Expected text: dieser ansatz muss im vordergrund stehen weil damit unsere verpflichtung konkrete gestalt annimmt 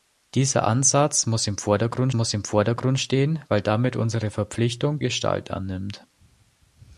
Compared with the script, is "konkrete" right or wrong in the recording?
wrong